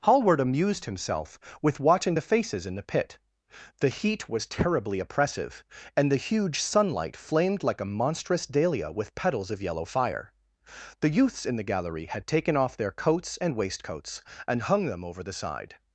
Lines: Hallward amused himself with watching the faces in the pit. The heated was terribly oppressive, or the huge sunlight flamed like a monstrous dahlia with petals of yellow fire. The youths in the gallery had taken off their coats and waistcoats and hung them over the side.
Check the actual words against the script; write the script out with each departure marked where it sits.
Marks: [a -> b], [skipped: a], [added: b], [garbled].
Hallward amused himself with watching the faces in the pit. The [heated -> heat] was terribly oppressive, [or -> and] the huge sunlight flamed like a monstrous dahlia with petals of yellow fire. The youths in the gallery had taken off their coats and waistcoats and hung them over the side.